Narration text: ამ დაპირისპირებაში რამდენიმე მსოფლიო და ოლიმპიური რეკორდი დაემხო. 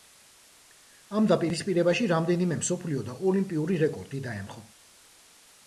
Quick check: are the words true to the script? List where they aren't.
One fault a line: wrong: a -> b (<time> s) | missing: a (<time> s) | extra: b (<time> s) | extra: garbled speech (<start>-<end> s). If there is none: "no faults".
no faults